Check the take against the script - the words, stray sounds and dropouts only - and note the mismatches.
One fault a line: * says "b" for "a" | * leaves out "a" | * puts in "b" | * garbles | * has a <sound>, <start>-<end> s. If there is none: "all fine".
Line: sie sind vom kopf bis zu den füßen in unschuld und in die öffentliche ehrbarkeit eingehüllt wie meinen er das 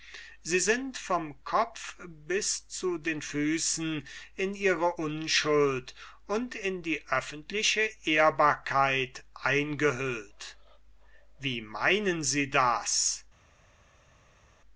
* puts in "ihre"
* says "sie" for "er"